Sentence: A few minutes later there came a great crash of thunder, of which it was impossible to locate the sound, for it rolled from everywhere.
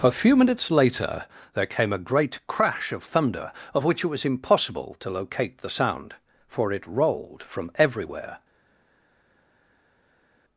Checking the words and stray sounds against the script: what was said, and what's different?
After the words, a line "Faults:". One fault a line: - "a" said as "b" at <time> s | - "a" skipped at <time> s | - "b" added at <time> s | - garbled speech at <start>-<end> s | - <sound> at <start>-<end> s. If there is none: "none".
A few minutes later there came a great crash of thunder, of which it was impossible to locate the sound, for it rolled from everywhere.
Faults:
none